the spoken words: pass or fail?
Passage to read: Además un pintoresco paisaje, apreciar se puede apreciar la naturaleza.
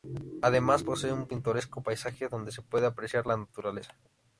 fail